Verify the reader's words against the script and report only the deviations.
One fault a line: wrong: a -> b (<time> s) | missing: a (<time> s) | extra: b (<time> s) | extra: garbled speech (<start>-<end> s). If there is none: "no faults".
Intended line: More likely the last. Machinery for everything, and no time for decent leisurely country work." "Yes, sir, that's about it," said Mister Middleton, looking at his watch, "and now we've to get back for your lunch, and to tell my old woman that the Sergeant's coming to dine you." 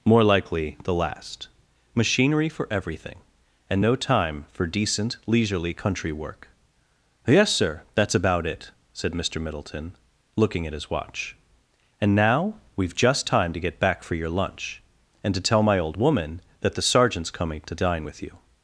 extra: just time (12.9 s)
extra: with (18.0 s)